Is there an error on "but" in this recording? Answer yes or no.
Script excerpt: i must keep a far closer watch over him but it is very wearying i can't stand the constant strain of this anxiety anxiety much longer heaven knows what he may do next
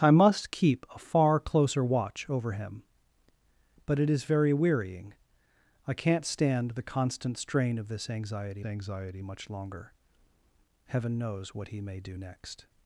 no